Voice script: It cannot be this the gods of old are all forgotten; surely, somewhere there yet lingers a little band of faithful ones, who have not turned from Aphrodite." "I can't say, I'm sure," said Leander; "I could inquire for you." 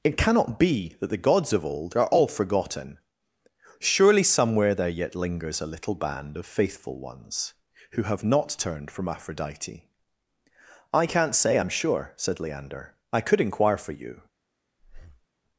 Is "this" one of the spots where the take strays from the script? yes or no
yes